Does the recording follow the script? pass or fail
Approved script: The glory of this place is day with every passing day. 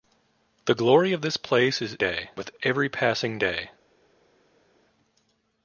pass